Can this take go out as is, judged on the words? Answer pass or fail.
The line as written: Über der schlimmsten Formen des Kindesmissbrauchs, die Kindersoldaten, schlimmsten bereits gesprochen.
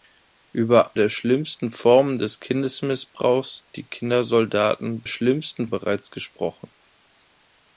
pass